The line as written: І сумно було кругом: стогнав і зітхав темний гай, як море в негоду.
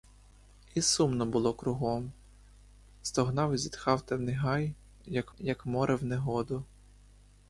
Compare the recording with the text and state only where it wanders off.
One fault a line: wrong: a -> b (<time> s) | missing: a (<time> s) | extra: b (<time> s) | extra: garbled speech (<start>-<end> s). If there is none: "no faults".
extra: як (5.4 s)